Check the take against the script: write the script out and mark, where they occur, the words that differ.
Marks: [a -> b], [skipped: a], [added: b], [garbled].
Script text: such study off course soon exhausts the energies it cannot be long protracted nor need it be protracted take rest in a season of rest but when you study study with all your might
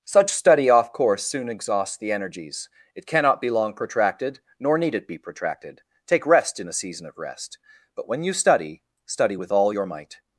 such study off course soon exhausts the energies it cannot be long protracted nor need it be protracted take rest in a season of rest but when you study study with all your might